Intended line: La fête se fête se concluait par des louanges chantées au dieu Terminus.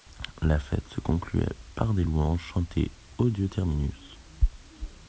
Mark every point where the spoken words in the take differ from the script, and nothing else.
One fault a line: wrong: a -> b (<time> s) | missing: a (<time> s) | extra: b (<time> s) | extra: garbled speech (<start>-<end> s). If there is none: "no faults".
missing: fête se (1.0 s)